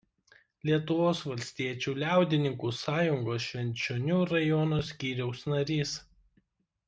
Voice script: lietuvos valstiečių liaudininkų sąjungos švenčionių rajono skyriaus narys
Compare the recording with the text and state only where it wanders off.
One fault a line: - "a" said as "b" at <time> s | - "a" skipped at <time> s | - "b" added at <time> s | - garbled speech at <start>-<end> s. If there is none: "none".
none